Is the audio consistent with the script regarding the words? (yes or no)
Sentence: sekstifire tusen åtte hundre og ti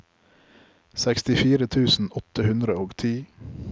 yes